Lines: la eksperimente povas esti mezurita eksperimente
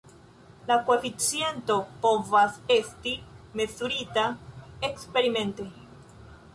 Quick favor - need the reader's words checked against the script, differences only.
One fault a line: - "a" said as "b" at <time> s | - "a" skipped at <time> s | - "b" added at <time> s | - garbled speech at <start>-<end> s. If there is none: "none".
- "eksperimente" said as "koeficiento" at 0.9 s